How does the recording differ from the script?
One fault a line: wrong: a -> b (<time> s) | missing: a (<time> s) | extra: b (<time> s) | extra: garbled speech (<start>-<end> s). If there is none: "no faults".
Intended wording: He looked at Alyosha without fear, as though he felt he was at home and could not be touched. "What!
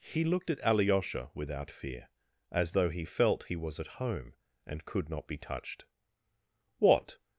no faults